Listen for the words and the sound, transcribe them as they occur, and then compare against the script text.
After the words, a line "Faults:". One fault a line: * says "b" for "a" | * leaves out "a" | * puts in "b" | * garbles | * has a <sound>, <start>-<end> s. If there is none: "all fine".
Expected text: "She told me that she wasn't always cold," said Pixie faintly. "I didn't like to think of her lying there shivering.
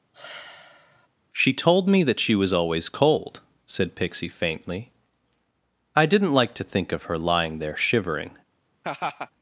"She told me that she was always cold," said Pixie faintly. "I didn't like to think of her lying there shivering.
Faults:
* has a sigh, 0.1-1.1 s
* says "was" for "wasn't"
* has a laugh, 8.8-9.3 s